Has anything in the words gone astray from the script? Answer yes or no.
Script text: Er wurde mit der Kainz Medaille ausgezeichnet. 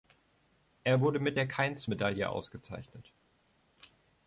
no